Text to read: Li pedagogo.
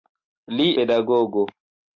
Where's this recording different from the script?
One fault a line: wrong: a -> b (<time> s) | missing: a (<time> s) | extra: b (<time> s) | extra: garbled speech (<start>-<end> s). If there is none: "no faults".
no faults